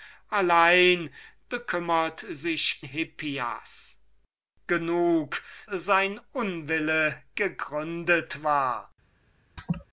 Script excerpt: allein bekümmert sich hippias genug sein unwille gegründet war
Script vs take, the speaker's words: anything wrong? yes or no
no